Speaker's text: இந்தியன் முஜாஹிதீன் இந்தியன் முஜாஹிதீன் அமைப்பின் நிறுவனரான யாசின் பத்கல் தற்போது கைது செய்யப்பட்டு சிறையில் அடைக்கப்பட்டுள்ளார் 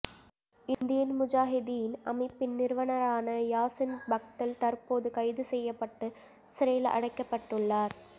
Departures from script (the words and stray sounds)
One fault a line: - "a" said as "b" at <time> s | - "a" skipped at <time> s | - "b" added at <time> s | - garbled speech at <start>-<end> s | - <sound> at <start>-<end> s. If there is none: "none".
- dropout at 0.7-0.8 s
- "இந்தியன் முஜாஹிதீன்" skipped at 1.9 s